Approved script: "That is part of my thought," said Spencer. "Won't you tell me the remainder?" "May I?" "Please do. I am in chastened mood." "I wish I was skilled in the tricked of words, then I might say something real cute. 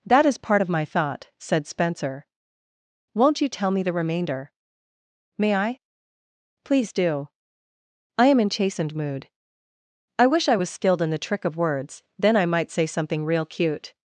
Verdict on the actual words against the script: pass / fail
fail